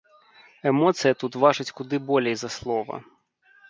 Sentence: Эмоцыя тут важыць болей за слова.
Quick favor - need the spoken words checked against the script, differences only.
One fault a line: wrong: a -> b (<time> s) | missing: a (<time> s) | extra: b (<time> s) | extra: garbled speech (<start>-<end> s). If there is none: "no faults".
extra: куды (1.8 s)